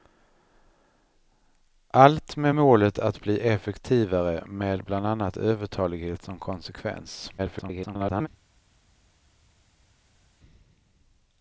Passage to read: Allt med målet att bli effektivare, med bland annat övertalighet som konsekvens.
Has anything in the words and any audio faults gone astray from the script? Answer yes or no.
yes